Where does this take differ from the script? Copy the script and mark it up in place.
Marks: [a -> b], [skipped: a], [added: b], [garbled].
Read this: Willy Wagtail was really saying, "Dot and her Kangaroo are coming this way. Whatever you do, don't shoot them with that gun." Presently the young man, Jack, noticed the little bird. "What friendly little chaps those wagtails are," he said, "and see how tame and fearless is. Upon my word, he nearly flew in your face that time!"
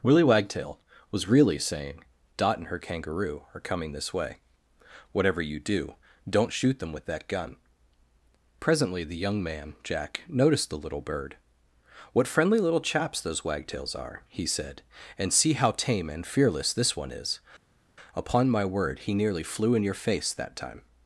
Willy Wagtail was really saying, "Dot and her Kangaroo are coming this way. Whatever you do, don't shoot them with that gun." Presently the young man, Jack, noticed the little bird. "What friendly little chaps those wagtails are," he said, "and see how tame and fearless [added: this one] is. Upon my word, he nearly flew in your face that time!"